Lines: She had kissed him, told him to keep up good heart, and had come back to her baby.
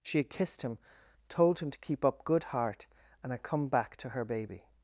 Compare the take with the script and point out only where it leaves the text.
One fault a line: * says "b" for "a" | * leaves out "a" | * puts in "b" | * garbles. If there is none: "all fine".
all fine